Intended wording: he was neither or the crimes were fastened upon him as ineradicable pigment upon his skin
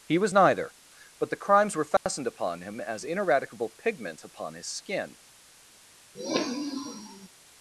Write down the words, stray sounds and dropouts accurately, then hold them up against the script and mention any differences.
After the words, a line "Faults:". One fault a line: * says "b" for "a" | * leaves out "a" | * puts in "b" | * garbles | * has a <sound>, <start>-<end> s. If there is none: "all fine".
he was neither but the crimes were fastened upon him as ineradicable pigment upon his skin
Faults:
* says "but" for "or"
* has a dropout, 2.0-2.1 s
* has a sniff, 6.1-7.3 s